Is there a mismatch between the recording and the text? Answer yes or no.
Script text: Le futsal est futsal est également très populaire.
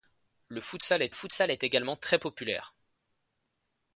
no